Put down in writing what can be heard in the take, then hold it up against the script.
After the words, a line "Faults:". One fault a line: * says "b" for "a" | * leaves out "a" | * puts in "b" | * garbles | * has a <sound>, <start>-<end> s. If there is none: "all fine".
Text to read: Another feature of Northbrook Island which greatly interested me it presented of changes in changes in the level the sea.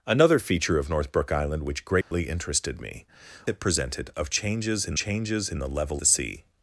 Another feature of Northbrook Island which greatly interested me it presented of changes in changes in the level the sea.
Faults:
* has a dropout, 2.0-2.1 s